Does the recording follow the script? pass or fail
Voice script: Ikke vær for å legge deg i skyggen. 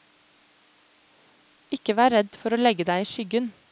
fail